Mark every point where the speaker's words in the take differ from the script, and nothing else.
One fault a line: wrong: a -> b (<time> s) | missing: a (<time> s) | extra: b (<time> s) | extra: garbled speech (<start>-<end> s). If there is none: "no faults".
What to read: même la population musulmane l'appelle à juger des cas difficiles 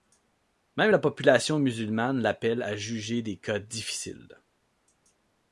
no faults